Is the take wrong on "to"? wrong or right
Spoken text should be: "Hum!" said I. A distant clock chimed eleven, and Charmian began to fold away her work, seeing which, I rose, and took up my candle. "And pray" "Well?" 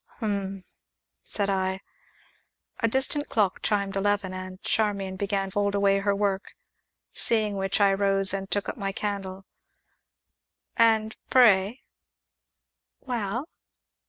wrong